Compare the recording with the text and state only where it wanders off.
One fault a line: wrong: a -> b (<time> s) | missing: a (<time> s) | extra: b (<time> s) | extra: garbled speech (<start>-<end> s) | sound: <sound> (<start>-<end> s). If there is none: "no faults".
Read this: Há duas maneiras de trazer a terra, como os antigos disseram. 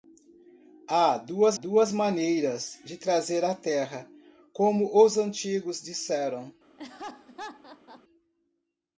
extra: duas (1.5 s)
sound: laugh (6.8-8.0 s)